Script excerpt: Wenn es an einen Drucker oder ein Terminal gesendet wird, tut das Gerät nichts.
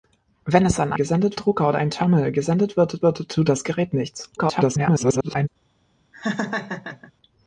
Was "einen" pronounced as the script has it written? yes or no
no